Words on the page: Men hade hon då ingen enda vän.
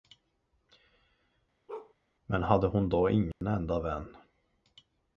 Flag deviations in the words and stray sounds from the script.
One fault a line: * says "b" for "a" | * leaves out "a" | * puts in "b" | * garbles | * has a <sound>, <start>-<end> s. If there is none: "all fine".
* has a bark, 1.7-1.9 s
* has a dropout, 3.3-3.4 s